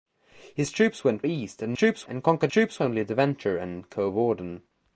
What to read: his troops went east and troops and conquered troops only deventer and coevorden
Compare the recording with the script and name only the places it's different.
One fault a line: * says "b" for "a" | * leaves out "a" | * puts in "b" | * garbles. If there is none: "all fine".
all fine